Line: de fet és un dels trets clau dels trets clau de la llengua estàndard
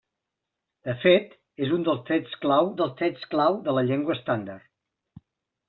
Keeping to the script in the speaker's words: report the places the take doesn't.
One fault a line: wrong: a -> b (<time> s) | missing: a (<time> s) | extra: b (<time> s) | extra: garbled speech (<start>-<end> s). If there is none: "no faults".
no faults